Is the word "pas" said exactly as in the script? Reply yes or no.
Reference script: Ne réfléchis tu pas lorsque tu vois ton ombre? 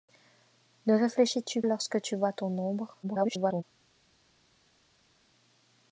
no